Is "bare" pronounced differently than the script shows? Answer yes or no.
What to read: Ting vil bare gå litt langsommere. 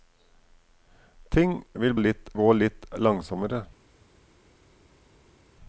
yes